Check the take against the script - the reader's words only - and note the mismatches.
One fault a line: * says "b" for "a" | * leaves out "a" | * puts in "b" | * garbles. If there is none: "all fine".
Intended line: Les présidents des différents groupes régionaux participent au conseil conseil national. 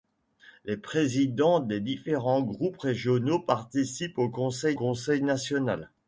all fine